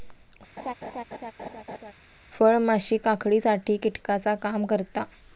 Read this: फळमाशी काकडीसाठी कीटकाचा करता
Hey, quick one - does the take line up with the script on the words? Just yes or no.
no